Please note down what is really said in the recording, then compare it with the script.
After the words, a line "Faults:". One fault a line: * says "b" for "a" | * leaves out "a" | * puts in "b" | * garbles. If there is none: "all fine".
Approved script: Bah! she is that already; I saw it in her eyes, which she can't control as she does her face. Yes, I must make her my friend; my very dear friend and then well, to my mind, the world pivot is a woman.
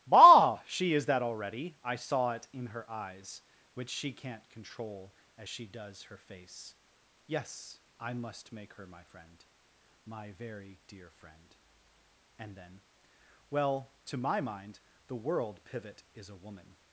Bah! she is that already; I saw it in her eyes, which she can't control as she does her face. Yes, I must make her my friend; my very dear friend and then well, to my mind, the world pivot is a woman.
Faults:
all fine